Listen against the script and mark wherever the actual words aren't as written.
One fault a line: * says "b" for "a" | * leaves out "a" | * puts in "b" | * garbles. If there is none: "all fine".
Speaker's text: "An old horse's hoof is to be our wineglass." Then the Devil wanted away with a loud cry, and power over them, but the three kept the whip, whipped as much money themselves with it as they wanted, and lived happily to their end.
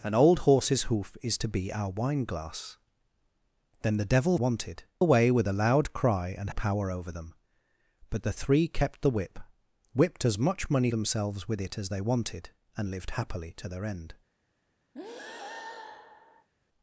all fine